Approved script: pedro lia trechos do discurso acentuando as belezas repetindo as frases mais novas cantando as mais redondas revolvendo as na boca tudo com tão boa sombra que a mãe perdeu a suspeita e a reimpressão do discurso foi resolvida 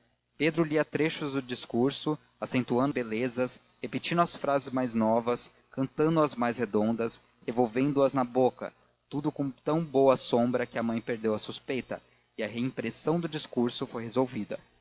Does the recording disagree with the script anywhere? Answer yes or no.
yes